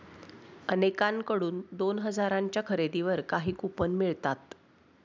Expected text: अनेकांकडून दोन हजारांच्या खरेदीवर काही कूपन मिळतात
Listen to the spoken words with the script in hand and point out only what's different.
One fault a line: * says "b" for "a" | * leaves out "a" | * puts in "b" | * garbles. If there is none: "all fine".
all fine